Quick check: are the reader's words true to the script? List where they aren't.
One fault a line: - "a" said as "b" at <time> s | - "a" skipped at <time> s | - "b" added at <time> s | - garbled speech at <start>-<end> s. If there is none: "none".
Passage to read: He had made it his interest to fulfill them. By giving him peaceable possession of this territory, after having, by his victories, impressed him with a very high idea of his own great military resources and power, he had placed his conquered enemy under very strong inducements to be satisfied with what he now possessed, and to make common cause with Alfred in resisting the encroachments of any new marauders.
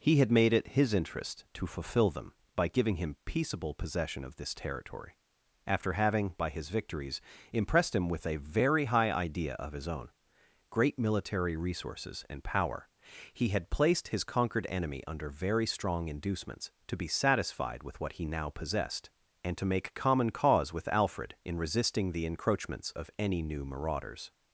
none